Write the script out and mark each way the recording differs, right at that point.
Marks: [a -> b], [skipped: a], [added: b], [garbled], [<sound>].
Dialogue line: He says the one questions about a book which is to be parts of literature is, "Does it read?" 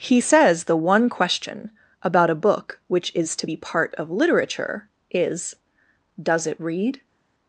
He says the one [questions -> question] about a book which is to be [parts -> part] of literature is, "Does it read?"